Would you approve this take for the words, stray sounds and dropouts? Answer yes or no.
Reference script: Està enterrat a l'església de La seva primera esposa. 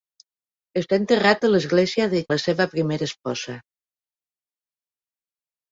yes